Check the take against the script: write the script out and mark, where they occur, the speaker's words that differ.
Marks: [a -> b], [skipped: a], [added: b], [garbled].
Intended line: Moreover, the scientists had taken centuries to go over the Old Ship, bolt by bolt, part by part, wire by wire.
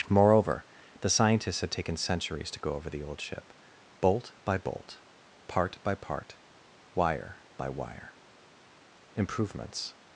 Moreover, the scientists had taken centuries to go over the Old Ship, bolt by bolt, part by part, wire by wire. [added: Improvements]